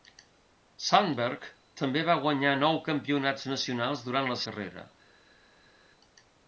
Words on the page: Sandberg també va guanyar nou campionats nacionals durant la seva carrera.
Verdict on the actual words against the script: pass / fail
fail